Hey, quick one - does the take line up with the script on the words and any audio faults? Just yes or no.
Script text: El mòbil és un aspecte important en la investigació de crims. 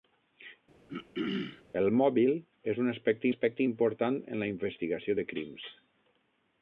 no